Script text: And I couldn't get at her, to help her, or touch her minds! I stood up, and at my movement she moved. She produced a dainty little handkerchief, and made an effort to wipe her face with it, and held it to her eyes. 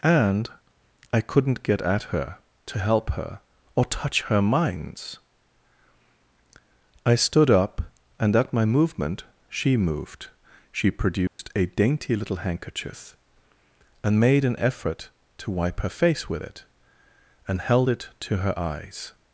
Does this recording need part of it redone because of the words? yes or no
no